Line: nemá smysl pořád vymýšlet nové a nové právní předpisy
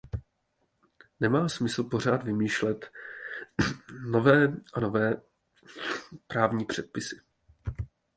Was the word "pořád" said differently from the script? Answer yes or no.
no